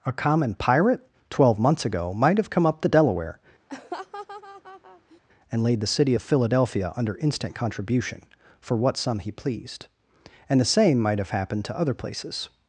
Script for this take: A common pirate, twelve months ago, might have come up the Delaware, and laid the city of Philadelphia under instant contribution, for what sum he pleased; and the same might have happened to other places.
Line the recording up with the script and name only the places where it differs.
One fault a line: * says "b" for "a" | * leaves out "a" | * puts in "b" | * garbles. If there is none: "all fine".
all fine